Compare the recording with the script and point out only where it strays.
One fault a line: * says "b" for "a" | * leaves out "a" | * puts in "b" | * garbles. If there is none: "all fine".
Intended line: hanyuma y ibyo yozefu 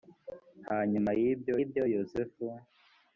* puts in "ibyo"